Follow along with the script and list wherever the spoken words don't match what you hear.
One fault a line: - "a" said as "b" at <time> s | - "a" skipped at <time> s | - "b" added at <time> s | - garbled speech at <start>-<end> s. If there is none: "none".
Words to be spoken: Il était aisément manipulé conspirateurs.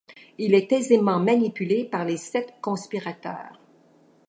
- "était" said as "est" at 0.6 s
- "par les sept" added at 1.9 s